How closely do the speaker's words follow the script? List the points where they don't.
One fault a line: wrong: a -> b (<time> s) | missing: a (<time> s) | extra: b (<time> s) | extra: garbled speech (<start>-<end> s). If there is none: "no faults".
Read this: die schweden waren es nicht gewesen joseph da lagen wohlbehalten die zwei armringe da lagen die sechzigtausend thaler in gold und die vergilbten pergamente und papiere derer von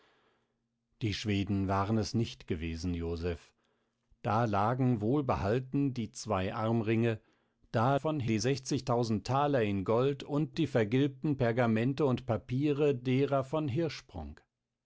wrong: lagen -> von (7.9 s)